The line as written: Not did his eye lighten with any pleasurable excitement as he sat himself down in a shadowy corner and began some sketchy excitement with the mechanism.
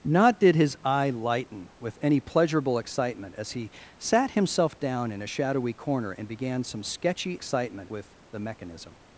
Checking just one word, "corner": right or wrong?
right